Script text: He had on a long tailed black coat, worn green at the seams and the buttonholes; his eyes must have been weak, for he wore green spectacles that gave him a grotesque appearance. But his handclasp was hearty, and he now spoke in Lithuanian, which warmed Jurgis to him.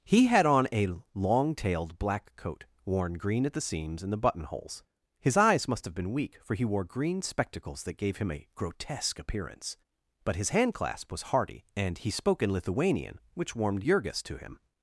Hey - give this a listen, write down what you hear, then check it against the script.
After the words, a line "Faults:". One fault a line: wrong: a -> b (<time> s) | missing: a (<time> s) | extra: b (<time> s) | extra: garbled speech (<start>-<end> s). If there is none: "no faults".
He had on a long tailed black coat, worn green at the seams and the buttonholes; his eyes must have been weak, for he wore green spectacles that gave him a grotesque appearance. But his handclasp was hearty, and he spoke in Lithuanian, which warmed Jurgis to him.
Faults:
missing: now (12.1 s)